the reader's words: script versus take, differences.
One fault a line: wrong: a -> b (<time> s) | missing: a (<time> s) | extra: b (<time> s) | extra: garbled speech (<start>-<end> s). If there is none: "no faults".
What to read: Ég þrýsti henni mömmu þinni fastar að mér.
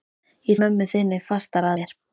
missing: þrýsti henni (0.6 s)
missing: að (1.7 s)